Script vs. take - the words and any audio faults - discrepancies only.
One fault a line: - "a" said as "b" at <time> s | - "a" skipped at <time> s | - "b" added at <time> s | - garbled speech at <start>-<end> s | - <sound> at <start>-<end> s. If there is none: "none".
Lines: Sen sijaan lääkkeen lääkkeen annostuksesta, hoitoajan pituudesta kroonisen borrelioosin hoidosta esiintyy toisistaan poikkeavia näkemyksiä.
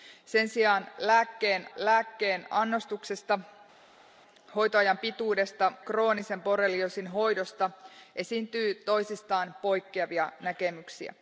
none